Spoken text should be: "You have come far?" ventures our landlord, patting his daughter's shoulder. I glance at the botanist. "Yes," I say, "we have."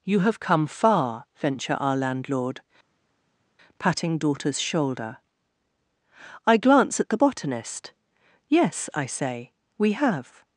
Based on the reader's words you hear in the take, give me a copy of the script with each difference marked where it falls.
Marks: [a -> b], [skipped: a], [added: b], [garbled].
"You have come far?" [ventures -> venture] our landlord, patting [skipped: his] daughter's shoulder. I glance at the botanist. "Yes," I say, "we have."